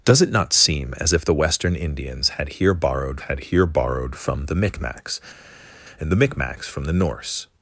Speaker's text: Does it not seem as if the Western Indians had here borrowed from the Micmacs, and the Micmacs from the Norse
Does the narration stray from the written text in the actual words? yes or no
yes